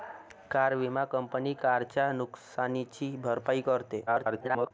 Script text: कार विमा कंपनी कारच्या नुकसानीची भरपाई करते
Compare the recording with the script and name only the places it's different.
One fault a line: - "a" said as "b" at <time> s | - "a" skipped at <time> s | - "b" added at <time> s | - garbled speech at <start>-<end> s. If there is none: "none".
- garbled speech at 4.1-4.7 s